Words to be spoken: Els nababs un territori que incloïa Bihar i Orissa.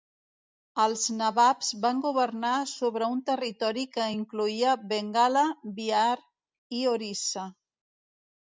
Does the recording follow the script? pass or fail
fail